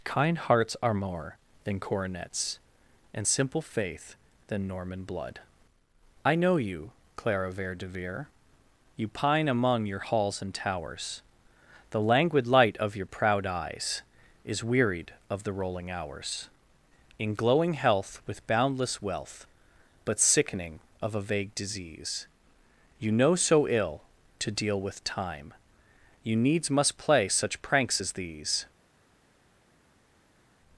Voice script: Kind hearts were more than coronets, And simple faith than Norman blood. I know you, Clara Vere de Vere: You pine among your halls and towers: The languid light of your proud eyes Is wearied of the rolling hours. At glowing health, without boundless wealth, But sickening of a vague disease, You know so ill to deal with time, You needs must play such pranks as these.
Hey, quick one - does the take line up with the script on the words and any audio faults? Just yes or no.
no